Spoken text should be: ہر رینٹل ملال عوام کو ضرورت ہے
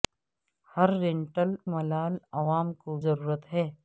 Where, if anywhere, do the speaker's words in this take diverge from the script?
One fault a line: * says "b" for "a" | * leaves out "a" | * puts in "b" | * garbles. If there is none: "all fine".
all fine